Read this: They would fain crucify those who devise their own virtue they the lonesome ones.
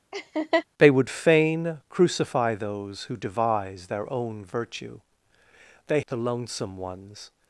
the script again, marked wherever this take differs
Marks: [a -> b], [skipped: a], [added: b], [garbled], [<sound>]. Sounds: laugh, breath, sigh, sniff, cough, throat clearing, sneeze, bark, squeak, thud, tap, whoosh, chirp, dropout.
[laugh] They would fain crucify those who devise their own virtue they the lonesome ones.